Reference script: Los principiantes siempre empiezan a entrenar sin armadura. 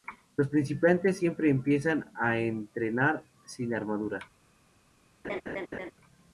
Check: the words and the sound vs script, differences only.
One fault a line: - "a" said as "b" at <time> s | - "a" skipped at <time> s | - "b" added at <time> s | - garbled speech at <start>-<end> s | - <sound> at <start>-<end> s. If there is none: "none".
- laugh at 5.2-5.9 s